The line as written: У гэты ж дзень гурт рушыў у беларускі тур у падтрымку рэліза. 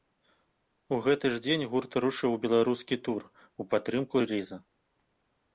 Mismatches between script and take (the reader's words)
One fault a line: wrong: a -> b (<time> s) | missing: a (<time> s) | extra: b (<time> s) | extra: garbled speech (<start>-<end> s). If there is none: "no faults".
no faults